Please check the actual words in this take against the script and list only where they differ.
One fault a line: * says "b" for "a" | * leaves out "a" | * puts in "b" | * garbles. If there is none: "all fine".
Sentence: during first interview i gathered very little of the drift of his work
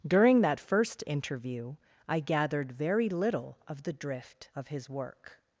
* puts in "that"